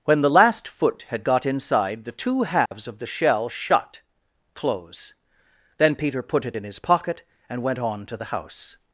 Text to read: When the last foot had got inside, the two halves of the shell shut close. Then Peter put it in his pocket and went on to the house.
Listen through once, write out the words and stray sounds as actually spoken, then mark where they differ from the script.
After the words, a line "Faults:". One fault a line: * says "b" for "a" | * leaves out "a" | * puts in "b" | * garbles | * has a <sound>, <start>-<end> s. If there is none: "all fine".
When the last foot had got inside, the two halves of the shell shut close. Then Peter put it in his pocket and went on to the house.
Faults:
* has a dropout, 2.7-2.7 s